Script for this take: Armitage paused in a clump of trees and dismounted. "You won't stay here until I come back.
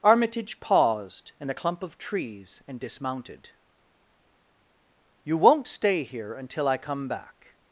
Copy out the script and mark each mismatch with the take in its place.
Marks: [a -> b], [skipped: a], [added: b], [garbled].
Armitage paused in a clump of trees and dismounted. "You won't stay here until I come back.